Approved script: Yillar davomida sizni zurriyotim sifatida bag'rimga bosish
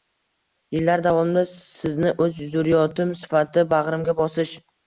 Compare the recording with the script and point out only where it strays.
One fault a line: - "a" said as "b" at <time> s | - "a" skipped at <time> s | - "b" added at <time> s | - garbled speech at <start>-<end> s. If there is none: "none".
- "o'z" added at 2.3 s